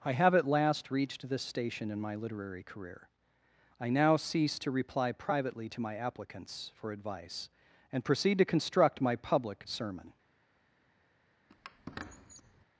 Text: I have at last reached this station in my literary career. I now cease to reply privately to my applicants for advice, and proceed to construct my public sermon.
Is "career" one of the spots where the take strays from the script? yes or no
no